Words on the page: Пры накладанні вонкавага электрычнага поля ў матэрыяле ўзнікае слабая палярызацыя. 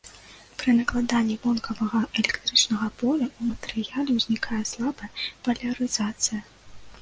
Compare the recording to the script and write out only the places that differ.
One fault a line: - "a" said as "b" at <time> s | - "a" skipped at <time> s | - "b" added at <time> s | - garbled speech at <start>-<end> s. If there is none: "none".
none